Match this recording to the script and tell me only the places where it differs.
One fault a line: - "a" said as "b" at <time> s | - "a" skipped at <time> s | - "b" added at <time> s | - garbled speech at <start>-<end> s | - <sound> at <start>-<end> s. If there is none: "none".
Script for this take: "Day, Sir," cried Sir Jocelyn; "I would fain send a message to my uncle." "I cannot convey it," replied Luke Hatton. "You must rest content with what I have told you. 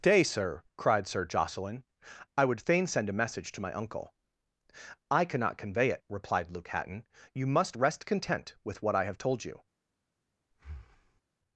- breath at 10.5-11.2 s